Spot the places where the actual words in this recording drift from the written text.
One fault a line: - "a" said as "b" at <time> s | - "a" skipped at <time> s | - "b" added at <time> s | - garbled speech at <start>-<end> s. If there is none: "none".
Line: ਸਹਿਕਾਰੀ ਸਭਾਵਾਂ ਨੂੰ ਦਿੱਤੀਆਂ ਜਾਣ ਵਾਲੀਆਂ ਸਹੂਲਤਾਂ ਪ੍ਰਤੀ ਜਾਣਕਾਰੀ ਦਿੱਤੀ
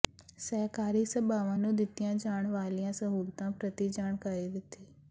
none